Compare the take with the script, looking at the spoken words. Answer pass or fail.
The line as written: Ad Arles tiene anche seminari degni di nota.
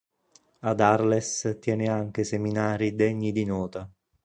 pass